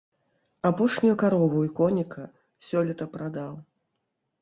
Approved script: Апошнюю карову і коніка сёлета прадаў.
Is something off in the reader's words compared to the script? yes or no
no